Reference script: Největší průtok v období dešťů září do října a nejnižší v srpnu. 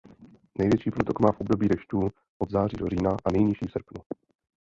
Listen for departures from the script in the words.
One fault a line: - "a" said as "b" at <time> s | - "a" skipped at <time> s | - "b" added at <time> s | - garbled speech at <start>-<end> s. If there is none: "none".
- "má" added at 1.2 s
- "od" added at 2.4 s